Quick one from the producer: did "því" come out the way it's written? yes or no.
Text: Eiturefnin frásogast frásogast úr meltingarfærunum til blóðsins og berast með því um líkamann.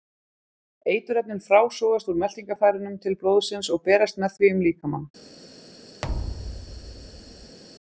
yes